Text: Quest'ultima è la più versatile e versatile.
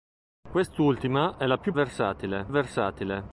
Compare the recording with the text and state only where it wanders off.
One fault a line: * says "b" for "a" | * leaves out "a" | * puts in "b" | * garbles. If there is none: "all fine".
all fine